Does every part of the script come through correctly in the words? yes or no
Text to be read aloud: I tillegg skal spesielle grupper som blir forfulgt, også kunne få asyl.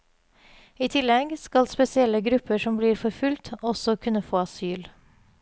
yes